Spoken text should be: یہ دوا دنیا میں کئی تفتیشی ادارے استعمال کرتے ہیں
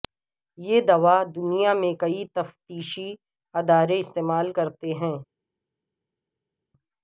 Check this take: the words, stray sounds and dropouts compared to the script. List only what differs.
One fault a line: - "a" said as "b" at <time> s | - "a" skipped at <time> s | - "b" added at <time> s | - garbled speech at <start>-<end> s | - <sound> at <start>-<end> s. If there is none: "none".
none